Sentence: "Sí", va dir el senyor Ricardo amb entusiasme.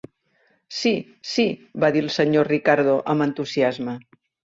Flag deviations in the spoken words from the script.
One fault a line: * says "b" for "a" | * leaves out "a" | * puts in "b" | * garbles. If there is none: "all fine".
* puts in "sí"